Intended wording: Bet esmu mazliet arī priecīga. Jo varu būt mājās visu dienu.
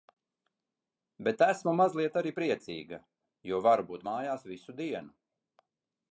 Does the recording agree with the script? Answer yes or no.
yes